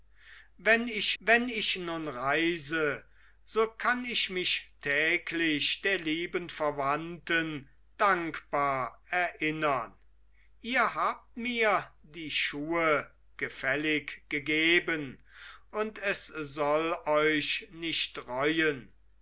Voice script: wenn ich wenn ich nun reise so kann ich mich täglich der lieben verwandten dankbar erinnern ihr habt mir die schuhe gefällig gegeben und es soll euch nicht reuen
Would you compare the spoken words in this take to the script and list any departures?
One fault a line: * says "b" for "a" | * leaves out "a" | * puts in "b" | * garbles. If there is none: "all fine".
all fine